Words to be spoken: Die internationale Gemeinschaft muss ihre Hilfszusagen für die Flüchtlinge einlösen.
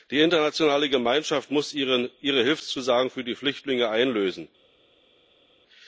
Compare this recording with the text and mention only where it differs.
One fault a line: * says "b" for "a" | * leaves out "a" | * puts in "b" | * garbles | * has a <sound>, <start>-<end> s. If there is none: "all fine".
all fine